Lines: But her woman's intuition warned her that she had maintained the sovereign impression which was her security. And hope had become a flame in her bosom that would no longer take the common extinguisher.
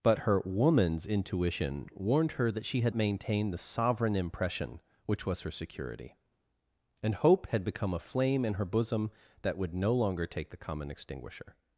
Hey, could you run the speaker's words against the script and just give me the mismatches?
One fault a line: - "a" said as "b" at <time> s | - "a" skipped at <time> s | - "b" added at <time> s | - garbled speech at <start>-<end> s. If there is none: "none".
none